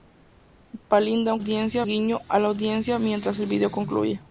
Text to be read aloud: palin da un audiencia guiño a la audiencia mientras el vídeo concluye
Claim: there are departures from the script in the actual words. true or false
false